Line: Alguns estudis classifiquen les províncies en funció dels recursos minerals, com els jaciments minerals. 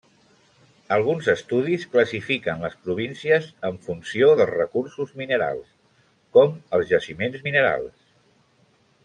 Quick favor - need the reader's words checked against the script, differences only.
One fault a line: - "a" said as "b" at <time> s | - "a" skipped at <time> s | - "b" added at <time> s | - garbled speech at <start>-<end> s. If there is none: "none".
none